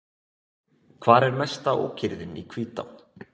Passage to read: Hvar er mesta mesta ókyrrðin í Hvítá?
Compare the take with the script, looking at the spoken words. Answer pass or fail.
fail